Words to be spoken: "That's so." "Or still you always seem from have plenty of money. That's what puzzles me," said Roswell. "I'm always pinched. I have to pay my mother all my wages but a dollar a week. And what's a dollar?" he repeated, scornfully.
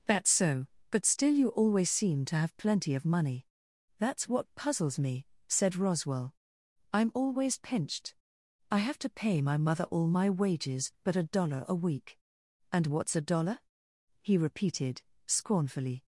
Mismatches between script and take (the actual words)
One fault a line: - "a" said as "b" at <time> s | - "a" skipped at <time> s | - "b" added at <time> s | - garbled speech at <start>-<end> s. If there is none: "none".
- "Or" said as "But" at 0.9 s
- "from" said as "to" at 2.2 s